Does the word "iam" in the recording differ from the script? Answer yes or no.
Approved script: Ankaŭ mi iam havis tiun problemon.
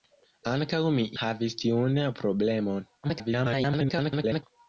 yes